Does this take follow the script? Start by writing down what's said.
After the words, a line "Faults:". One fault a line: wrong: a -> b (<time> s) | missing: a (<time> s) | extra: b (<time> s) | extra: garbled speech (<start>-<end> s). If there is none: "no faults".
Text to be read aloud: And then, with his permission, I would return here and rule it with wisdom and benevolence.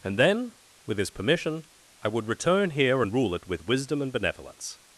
And then, with his permission, I would return here and rule it with wisdom and benevolence.
Faults:
no faults